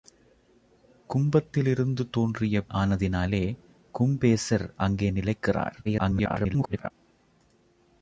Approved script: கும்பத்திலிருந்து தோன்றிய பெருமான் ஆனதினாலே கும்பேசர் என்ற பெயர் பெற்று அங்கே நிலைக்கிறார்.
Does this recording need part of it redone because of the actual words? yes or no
yes